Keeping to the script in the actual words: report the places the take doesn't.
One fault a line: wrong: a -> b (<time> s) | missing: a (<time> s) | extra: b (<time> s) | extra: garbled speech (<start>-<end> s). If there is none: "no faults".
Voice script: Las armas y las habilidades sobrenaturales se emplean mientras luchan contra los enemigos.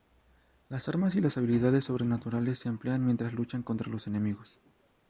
no faults